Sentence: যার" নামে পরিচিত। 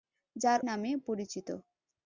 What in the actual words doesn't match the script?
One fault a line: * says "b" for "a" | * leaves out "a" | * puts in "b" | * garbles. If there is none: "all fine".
all fine